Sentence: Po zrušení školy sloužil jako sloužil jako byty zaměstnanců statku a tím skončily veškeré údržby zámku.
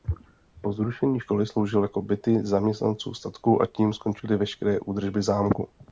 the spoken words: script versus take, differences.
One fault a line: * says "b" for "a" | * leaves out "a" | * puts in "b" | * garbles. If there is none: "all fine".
* leaves out "sloužil jako"